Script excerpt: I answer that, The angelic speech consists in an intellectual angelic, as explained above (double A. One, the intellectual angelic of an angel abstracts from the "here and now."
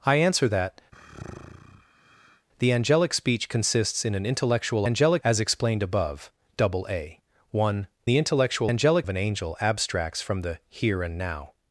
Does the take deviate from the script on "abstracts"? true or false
false